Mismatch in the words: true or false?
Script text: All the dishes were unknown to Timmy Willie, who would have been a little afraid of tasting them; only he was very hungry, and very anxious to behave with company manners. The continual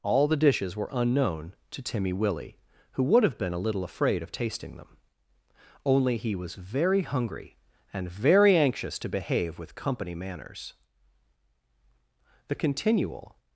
false